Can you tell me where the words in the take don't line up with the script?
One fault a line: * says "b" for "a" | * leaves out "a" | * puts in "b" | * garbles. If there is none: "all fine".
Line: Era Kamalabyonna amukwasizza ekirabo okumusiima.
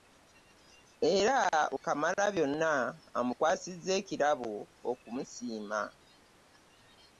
all fine